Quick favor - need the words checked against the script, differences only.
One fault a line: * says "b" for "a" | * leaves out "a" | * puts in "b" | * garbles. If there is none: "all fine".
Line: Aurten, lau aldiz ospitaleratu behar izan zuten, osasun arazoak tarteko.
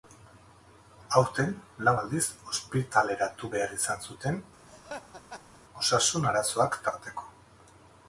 all fine